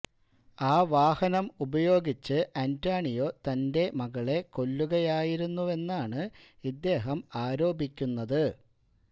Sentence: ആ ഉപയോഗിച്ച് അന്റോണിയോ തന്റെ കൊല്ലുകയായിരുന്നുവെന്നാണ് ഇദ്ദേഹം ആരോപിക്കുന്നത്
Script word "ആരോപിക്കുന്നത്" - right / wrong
right